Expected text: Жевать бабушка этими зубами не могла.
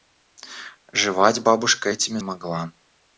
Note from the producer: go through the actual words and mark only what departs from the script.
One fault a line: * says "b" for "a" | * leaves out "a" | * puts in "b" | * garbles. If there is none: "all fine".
* leaves out "зубами не"